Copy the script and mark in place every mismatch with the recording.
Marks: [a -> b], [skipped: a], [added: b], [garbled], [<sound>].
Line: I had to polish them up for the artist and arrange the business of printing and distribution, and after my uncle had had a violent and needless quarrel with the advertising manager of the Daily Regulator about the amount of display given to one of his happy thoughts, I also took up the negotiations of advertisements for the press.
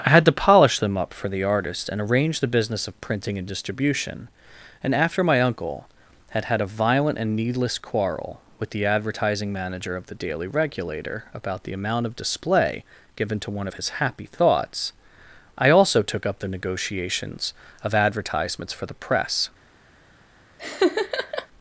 I had to polish them up for the artist and arrange the business of printing and distribution, and after my uncle had had a violent and needless quarrel with the advertising manager of the Daily Regulator about the amount of display given to one of his happy thoughts, I also took up the negotiations of advertisements for the press. [laugh]